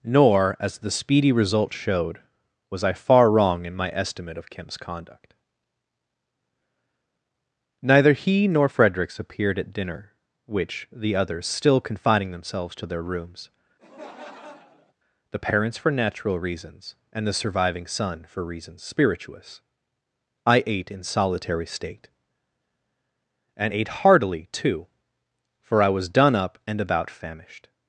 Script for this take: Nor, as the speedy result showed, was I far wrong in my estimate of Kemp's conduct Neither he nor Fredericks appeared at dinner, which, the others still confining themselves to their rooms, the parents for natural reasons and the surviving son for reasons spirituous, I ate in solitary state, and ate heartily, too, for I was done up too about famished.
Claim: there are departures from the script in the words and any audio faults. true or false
true